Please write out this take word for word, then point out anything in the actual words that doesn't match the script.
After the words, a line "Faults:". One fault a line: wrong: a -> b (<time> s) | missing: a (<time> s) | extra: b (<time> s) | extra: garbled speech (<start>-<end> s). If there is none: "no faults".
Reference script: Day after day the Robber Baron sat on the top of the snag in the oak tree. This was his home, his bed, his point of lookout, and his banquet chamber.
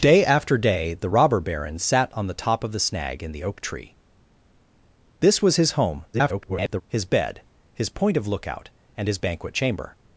Day after day the Robber Baron sat on the top of the snag in the oak tree. This was his home, [garbled] his bed, his point of lookout, and his banquet chamber.
Faults:
extra: garbled speech (6.1-6.8 s)